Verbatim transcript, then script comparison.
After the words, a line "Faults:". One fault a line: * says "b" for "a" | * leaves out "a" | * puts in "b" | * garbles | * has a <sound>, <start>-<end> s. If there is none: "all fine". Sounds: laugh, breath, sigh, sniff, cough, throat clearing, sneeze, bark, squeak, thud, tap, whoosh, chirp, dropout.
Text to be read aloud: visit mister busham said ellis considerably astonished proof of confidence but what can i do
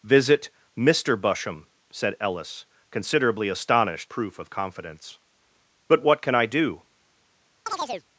visit mister busham said ellis considerably astonished proof of confidence but what can i do
Faults:
* has a chirp, 7.7-8.1 s